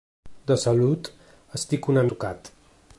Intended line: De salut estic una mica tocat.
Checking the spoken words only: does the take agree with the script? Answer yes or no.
no